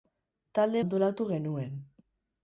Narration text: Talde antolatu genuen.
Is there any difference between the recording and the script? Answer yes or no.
no